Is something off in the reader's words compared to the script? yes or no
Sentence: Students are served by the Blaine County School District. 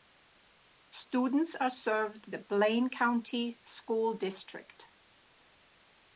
yes